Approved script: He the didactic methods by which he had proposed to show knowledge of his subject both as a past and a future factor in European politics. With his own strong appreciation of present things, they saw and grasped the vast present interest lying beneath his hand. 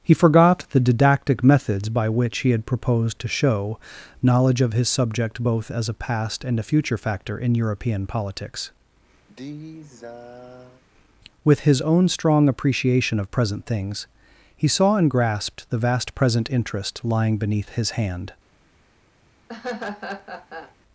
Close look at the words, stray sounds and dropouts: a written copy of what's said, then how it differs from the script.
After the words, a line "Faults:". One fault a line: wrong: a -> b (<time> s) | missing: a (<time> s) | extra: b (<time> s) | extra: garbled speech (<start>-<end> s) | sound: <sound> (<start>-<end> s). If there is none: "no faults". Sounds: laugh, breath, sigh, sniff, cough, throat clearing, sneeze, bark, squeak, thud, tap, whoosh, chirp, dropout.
He forgot the didactic methods by which he had proposed to show knowledge of his subject both as a past and a future factor in European politics. With his own strong appreciation of present things, he saw and grasped the vast present interest lying beneath his hand.
Faults:
extra: forgot (0.1 s)
sound: sigh (9.3-10.8 s)
wrong: they -> he (14.6 s)
sound: laugh (19.5-20.8 s)